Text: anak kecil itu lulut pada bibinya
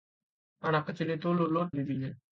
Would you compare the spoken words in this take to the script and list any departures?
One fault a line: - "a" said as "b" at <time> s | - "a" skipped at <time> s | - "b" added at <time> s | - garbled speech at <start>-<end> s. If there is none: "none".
- "pada" skipped at 1.7 s